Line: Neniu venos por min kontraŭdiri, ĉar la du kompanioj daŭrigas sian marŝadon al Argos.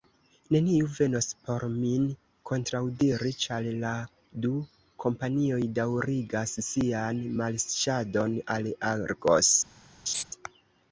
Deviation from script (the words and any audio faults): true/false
true